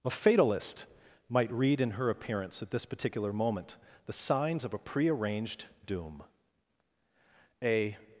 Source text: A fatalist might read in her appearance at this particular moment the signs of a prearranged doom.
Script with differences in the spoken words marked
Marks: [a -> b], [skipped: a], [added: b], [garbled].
A fatalist might read in her appearance at this particular moment the signs of a prearranged doom. [added: A]